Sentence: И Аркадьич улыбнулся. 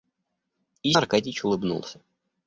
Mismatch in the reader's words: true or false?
false